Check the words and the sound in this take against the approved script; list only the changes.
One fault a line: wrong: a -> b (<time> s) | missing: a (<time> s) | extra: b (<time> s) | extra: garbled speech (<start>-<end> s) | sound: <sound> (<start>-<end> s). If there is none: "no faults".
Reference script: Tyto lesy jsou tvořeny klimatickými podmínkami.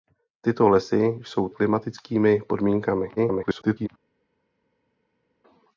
missing: tvořeny (1.5 s)
extra: garbled speech (3.2-3.9 s)